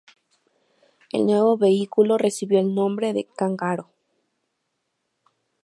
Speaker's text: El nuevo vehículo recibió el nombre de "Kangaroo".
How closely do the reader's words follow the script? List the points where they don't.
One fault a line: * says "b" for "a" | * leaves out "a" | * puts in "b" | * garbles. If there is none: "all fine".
all fine